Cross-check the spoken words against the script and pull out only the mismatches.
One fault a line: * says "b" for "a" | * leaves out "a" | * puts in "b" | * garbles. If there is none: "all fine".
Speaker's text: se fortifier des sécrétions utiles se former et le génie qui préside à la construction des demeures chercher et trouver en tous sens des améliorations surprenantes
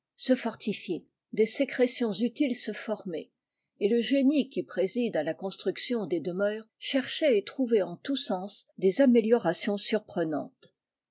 all fine